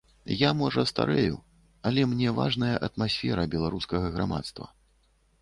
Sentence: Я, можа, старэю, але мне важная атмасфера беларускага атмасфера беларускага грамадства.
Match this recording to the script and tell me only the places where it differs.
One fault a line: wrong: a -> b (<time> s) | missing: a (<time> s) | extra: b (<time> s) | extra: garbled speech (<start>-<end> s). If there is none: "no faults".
missing: атмасфера беларускага (4.1 s)